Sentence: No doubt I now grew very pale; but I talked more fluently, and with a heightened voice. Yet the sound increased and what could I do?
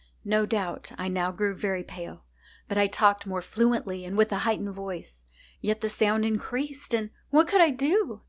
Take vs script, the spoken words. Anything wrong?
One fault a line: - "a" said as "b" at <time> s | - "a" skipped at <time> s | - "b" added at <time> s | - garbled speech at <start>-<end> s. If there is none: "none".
none